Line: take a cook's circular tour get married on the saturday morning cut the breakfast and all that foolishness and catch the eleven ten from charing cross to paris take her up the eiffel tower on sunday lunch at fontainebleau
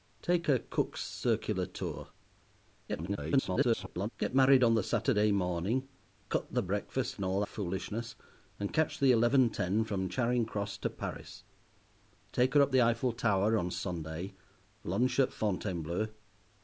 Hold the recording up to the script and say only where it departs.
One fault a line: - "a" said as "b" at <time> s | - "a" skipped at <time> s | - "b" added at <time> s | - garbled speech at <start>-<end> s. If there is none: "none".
- garbled speech at 2.9-4.1 s
- "that" skipped at 7.4 s